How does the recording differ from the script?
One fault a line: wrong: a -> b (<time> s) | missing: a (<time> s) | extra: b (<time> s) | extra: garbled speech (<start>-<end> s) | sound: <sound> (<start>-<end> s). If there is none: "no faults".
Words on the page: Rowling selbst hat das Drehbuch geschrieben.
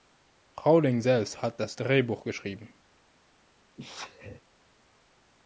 sound: sneeze (3.8-4.4 s)